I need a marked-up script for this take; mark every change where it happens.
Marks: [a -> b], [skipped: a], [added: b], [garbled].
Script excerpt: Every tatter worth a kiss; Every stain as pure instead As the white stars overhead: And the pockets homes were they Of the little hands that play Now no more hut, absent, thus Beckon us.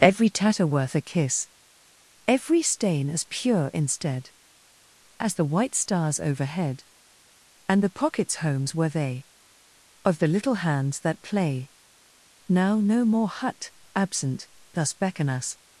Every tatter worth a kiss; Every stain as pure instead As the white stars overhead: And the pockets homes were they Of the little hands that play Now no more hut, absent, thus Beckon us.